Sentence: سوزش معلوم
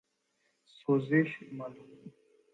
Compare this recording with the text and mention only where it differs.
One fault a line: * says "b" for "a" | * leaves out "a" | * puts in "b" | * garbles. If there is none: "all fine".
all fine